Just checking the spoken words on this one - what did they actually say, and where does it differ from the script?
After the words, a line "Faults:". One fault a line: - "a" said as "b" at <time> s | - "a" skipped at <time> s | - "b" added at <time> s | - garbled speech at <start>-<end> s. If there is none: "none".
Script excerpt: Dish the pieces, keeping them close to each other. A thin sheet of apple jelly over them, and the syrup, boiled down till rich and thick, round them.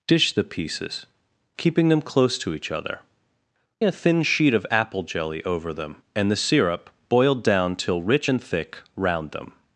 Dish the pieces, keeping them close to each other. A thin sheet of apple jelly over them, and the syrup, boiled down till rich and thick, round them.
Faults:
none